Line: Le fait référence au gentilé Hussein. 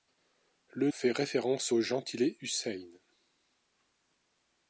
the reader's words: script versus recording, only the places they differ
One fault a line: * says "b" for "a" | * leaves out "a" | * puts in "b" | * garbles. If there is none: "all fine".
all fine